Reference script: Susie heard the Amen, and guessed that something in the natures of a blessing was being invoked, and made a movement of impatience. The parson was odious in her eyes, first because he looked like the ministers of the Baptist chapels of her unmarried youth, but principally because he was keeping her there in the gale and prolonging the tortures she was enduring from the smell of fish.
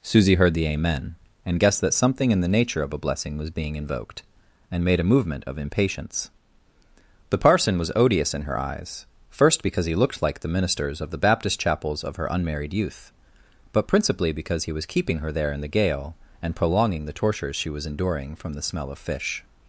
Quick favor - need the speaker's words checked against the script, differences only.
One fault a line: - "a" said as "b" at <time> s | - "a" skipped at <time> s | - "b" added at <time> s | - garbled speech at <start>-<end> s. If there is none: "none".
- "natures" said as "nature" at 2.5 s